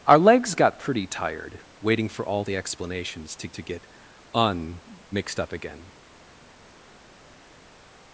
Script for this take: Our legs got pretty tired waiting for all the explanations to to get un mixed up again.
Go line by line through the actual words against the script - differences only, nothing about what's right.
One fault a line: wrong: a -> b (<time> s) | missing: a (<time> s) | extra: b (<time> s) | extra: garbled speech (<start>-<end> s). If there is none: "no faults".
no faults